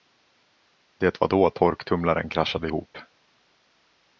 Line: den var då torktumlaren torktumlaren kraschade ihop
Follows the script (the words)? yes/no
no